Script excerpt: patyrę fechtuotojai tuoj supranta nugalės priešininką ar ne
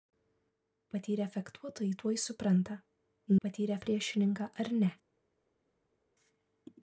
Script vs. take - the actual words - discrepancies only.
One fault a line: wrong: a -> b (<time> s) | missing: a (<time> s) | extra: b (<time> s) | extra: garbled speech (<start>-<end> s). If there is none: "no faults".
wrong: nugalės -> patyrę (3.4 s)